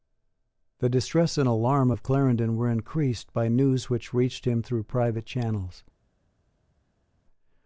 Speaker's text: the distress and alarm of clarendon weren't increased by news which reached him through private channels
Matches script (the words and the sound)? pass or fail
fail